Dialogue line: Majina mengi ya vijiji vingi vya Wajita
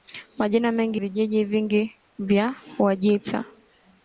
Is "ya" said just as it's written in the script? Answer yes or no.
no